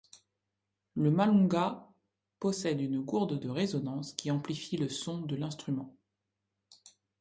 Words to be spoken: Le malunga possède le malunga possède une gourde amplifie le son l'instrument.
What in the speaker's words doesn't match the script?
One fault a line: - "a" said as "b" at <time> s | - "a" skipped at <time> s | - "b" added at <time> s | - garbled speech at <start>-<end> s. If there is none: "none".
- "le malunga possède une gourde" said as "une gourde de résonance qui" at 2.8 s
- "de" added at 5.2 s